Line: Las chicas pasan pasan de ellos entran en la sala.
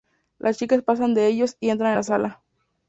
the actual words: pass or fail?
fail